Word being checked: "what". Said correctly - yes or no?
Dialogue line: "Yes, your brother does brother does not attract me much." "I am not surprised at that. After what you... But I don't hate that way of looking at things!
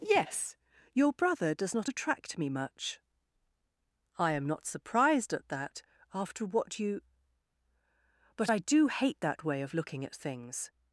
yes